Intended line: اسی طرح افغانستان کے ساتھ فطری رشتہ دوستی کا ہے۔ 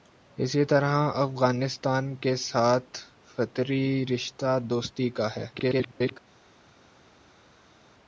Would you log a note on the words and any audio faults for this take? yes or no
yes